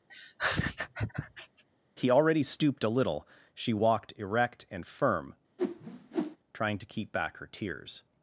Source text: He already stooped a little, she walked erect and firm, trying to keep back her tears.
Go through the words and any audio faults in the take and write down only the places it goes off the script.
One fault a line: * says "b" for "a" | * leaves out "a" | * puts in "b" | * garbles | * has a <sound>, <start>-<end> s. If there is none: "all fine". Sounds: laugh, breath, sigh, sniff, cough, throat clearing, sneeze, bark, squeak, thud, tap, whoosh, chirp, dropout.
* has a laugh, 0.1-1.6 s
* has a whoosh, 5.6-6.4 s